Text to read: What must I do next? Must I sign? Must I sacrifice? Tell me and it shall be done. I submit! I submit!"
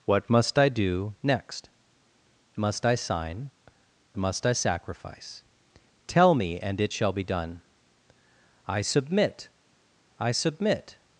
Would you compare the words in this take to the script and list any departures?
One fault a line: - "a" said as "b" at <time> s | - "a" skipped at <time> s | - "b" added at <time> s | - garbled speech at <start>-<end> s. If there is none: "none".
none